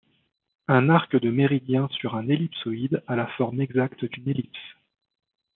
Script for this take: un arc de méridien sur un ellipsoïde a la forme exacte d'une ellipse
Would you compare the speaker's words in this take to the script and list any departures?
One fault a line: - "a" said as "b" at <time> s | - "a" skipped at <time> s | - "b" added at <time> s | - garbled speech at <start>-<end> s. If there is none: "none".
none